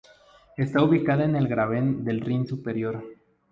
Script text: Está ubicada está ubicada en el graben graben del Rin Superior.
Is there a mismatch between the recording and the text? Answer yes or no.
yes